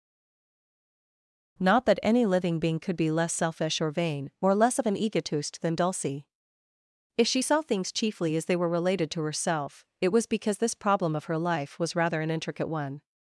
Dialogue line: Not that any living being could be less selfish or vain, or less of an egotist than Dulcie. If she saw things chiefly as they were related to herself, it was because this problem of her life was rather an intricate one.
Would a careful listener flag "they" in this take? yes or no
no